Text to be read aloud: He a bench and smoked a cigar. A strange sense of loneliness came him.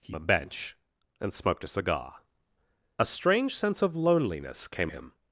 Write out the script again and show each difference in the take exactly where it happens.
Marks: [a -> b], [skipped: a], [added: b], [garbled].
He a bench and smoked a cigar. A strange sense of loneliness came him.